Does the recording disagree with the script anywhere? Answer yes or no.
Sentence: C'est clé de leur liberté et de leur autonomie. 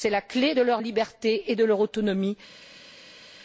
yes